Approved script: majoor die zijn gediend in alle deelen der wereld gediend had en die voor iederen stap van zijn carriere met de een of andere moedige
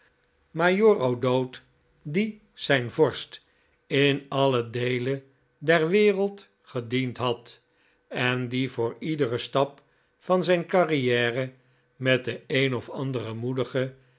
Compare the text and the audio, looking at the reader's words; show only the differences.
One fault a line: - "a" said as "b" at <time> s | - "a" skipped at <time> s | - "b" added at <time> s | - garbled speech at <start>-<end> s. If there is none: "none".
- "o'dowd" added at 1.0 s
- "gediend" said as "vorst" at 2.9 s